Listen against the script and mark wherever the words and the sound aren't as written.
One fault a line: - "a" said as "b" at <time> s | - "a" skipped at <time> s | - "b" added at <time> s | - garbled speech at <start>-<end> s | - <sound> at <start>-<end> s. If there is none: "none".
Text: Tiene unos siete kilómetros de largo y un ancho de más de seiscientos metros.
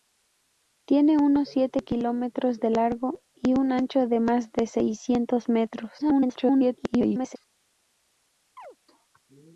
- garbled speech at 6.0-7.4 s
- chirp at 8.6-8.8 s